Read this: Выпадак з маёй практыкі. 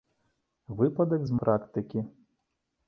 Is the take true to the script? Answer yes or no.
no